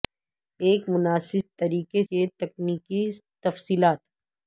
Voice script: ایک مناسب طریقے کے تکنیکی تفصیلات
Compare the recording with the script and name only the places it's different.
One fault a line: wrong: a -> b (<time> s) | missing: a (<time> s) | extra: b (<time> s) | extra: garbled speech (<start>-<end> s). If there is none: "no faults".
no faults